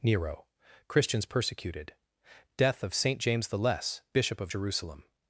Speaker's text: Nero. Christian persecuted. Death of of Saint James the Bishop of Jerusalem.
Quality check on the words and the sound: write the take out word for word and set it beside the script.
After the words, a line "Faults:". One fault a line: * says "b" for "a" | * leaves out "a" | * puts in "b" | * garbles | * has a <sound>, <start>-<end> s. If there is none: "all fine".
Nero. Christians persecuted. Death of Saint James the Less, Bishop of Jerusalem.
Faults:
* says "Christians" for "Christian"
* leaves out "of"
* puts in "Less"